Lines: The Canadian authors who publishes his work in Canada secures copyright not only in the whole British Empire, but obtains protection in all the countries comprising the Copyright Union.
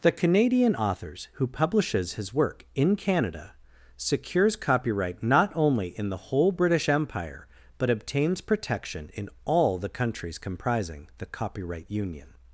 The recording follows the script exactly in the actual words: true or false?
true